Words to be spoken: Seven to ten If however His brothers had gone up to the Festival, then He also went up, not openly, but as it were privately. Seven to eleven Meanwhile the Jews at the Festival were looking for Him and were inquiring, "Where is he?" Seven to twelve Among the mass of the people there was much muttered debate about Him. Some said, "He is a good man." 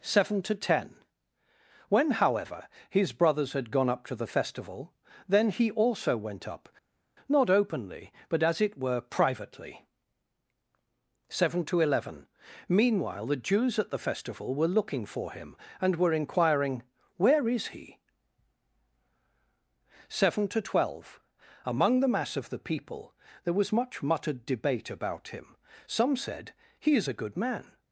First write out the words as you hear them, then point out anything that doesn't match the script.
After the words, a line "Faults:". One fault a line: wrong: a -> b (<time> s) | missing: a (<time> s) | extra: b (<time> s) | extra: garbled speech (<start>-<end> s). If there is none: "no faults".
Seven to ten When however His brothers had gone up to the Festival, then He also went up, not openly, but as it were privately. Seven to eleven Meanwhile the Jews at the Festival were looking for Him and were inquiring, "Where is he?" Seven to twelve Among the mass of the people there was much muttered debate about Him. Some said, "He is a good man."
Faults:
wrong: If -> When (1.9 s)